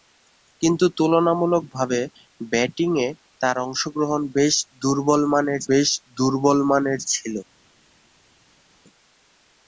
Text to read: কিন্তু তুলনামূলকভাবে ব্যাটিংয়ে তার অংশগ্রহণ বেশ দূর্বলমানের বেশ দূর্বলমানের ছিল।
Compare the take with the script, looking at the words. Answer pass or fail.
pass